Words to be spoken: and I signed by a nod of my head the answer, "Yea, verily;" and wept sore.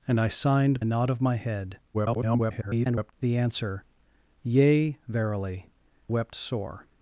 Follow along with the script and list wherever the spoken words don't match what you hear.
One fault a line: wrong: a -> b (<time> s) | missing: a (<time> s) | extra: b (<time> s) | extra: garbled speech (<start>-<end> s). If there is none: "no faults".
missing: by (0.8 s)
extra: garbled speech (1.9-3.1 s)
missing: and (5.7 s)